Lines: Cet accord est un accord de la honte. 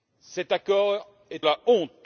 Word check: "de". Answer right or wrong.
wrong